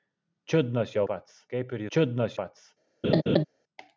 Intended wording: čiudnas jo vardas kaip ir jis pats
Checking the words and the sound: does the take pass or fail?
fail